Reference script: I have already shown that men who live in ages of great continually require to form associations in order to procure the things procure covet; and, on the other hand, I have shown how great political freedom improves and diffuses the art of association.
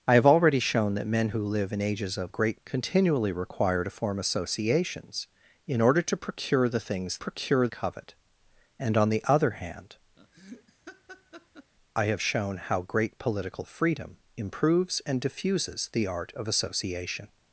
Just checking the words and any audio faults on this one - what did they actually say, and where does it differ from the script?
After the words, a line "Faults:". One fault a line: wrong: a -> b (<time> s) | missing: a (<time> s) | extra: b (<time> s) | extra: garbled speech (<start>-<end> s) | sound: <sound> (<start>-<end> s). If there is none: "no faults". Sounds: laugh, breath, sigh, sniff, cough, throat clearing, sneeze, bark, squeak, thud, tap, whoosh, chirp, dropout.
I have already shown that men who live in ages of great continually require to form associations in order to procure the things procure covet; and, on the other hand, I have shown how great political freedom improves and diffuses the art of association.
Faults:
sound: laugh (10.2-11.7 s)